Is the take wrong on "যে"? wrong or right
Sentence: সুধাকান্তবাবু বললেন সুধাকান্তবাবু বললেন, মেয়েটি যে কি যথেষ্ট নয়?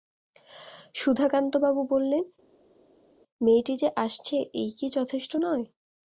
wrong